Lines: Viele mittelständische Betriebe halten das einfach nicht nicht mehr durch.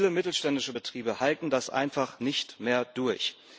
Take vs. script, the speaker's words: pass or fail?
fail